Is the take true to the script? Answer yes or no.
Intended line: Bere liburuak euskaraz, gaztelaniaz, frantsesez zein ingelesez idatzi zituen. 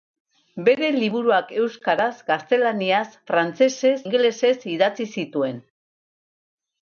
no